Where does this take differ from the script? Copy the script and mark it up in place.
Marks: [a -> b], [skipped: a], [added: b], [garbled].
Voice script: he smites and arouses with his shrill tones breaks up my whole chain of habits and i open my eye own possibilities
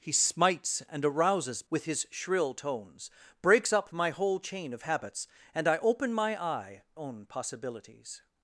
he smites and arouses with his shrill tones breaks up my whole chain of habits and i open my eye own possibilities